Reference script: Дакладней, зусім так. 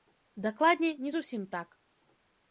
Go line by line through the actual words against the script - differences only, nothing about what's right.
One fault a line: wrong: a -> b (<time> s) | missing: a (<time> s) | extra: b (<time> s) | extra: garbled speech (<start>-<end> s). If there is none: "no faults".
extra: не (1.0 s)